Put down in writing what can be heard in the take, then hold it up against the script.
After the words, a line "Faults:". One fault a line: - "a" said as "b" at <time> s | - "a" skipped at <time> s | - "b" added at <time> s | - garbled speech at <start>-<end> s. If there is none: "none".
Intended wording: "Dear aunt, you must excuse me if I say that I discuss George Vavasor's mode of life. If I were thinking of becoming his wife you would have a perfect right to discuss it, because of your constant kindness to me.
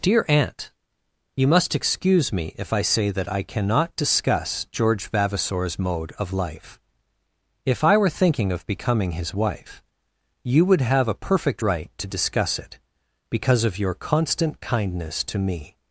"Dear aunt, you must excuse me if I say that I cannot discuss George Vavasor's mode of life. If I were thinking of becoming his wife you would have a perfect right to discuss it, because of your constant kindness to me.
Faults:
- "cannot" added at 3.4 s